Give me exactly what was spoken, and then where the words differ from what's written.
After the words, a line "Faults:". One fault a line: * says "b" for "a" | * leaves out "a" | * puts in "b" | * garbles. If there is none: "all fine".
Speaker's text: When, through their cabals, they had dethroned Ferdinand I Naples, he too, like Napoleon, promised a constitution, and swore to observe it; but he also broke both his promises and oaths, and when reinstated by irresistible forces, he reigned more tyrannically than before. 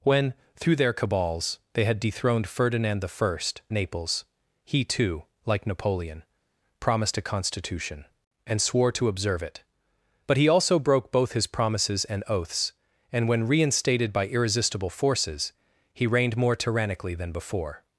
When, through their cabals, they had dethroned Ferdinand I Naples, he too, like Napoleon, promised a constitution, and swore to observe it; but he also broke both his promises and oaths, and when reinstated by irresistible forces, he reigned more tyrannically than before.
Faults:
all fine